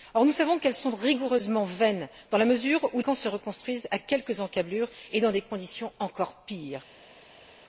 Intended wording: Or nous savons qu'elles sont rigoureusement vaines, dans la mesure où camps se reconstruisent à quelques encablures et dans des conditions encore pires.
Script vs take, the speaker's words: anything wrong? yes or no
no